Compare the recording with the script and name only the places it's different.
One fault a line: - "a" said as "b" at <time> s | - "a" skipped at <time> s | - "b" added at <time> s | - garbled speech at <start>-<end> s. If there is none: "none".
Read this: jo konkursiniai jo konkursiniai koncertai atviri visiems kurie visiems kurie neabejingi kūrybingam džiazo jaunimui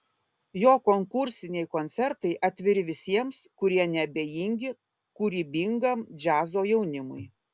- "jo konkursiniai" skipped at 1.7 s
- "visiems kurie" skipped at 3.9 s